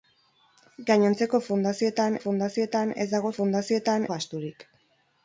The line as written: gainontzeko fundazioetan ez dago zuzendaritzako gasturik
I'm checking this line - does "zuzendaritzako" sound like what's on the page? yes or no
no